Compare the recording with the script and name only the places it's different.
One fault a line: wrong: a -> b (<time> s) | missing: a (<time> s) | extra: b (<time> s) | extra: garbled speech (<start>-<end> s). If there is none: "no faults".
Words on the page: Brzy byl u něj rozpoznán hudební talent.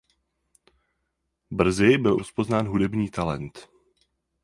missing: něj (2.2 s)